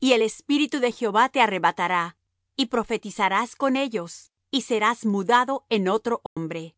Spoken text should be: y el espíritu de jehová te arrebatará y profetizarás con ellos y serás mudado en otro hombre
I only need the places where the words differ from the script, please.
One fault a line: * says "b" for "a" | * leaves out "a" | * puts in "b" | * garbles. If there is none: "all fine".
all fine